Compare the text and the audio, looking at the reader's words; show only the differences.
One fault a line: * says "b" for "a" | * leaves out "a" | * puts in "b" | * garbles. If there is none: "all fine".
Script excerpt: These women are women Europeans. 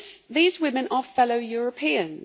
* says "fellow" for "women"